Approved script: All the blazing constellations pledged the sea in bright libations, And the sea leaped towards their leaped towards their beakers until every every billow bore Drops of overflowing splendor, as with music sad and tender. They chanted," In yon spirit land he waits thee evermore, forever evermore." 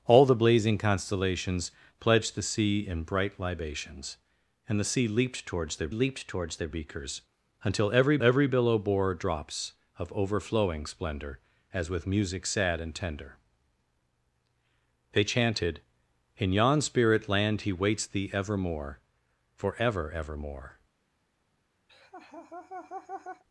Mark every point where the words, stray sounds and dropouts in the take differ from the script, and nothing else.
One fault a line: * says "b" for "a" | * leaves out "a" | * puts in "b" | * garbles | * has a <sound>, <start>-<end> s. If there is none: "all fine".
* has a laugh, 21.9-23.4 s